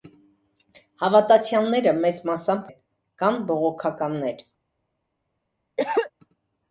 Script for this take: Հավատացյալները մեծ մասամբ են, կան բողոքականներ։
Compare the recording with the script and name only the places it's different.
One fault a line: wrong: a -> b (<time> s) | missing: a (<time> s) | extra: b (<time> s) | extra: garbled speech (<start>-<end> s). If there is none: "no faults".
no faults